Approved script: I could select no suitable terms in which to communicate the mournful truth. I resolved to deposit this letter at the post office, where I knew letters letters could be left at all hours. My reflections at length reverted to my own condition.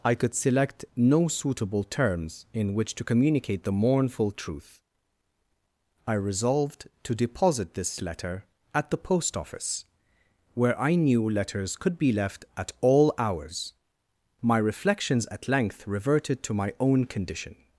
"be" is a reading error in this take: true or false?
false